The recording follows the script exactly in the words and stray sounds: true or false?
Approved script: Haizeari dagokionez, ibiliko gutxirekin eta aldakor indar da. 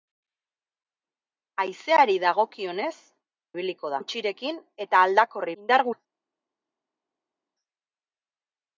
true